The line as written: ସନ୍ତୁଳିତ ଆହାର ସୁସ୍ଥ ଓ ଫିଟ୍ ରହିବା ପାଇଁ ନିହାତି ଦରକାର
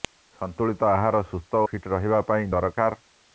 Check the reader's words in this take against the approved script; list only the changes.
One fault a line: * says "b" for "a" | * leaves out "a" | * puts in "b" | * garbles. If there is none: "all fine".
* leaves out "ଓ"
* leaves out "ନିହାତି"